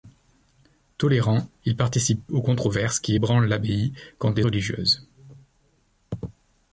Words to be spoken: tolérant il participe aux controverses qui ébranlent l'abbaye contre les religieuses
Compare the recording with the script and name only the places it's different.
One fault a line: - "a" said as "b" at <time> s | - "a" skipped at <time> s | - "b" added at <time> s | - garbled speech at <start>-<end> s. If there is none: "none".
none